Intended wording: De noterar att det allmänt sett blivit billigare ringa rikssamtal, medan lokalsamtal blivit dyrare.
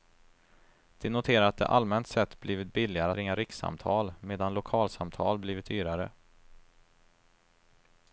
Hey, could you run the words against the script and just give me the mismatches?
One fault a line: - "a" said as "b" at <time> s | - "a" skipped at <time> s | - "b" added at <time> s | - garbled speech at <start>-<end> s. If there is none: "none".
none